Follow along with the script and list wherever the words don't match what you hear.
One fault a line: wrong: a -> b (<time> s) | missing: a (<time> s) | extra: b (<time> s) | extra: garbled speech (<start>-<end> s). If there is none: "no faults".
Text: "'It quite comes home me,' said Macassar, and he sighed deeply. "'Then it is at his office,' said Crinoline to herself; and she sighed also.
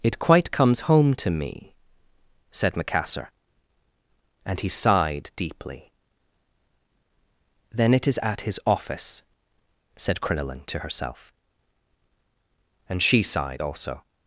extra: to (1.1 s)